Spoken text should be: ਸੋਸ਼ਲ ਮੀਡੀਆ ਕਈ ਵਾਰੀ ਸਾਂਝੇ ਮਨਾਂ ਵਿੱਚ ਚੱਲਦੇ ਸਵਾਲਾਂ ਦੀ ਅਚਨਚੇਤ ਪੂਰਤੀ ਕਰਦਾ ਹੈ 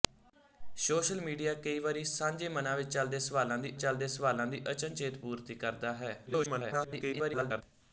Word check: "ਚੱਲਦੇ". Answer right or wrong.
right